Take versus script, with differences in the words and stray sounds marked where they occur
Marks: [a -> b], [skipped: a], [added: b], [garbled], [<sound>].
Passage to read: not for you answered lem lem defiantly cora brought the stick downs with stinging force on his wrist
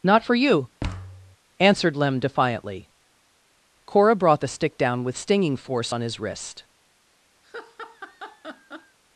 not for you [thud] answered lem [skipped: lem] defiantly cora brought the stick [downs -> down] with stinging force on his wrist [laugh]